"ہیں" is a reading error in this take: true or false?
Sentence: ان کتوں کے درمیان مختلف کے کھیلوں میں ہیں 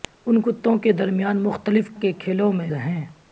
false